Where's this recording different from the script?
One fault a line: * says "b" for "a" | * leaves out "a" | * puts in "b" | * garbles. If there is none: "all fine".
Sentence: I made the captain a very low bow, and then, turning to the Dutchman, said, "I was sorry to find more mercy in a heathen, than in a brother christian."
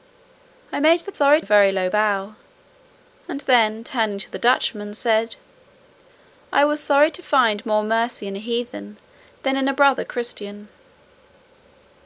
* says "sorry" for "captain"